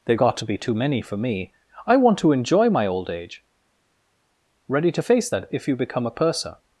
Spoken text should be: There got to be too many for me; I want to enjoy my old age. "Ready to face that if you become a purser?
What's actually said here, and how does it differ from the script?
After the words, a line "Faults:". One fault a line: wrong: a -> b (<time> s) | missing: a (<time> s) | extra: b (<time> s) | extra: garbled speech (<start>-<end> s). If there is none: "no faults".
They got to be too many for me; I want to enjoy my old age. "Ready to face that if you become a purser?
Faults:
wrong: There -> They (0.1 s)